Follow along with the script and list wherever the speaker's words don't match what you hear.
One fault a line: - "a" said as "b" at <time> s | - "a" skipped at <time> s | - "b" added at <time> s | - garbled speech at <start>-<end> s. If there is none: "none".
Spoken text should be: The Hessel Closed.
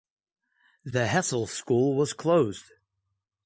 - "School was" added at 1.4 s